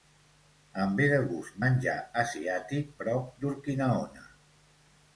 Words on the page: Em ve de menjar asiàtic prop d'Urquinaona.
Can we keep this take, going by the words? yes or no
no